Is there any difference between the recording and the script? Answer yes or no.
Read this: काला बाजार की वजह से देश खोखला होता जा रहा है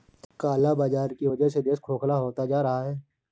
no